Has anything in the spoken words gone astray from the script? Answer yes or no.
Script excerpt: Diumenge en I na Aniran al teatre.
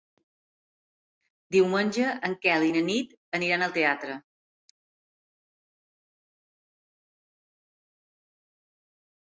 yes